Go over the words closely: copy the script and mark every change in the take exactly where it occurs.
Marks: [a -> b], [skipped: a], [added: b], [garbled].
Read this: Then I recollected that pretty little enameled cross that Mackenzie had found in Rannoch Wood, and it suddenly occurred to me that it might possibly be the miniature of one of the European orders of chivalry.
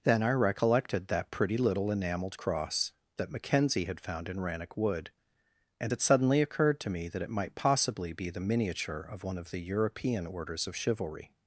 Then I recollected that pretty little enameled cross that Mackenzie had found in Rannoch Wood, and it suddenly occurred to me that it might possibly be the miniature of one of the European orders of chivalry.